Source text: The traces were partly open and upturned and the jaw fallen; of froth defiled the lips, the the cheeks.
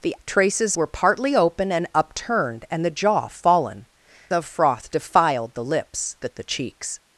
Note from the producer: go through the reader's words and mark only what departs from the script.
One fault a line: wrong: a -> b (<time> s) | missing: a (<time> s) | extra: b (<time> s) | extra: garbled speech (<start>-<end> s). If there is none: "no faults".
no faults